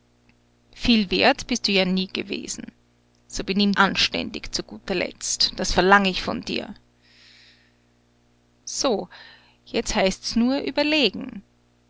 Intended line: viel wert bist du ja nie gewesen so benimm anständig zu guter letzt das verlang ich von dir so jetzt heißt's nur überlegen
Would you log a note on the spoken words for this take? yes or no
no